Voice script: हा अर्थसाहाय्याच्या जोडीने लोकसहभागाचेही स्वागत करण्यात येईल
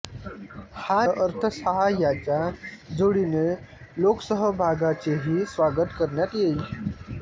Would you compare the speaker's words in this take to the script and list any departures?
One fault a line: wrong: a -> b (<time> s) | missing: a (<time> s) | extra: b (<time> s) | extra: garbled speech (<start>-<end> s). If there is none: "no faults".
no faults